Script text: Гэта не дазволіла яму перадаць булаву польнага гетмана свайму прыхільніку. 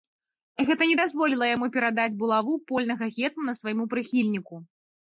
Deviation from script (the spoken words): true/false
false